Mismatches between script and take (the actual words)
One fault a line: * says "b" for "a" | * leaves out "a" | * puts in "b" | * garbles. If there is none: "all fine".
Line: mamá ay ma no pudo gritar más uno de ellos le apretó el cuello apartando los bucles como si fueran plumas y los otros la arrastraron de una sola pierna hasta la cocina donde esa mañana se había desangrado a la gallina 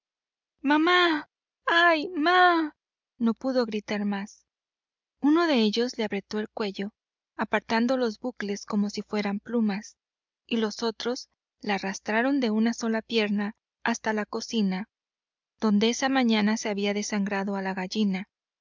all fine